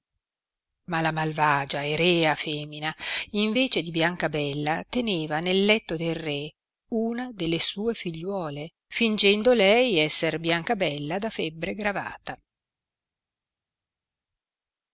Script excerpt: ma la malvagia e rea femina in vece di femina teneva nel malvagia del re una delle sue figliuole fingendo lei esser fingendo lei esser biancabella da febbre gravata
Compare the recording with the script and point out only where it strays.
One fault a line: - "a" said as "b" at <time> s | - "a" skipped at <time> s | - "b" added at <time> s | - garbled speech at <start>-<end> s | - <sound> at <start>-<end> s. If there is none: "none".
- "femina" said as "biancabella" at 3.9 s
- "malvagia" said as "letto" at 5.6 s
- "fingendo lei esser" skipped at 10.4 s